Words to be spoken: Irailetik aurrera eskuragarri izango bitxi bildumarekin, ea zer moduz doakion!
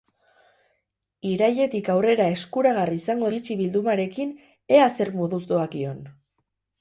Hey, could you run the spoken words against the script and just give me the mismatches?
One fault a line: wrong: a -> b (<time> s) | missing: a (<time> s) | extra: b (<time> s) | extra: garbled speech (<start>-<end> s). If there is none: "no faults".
no faults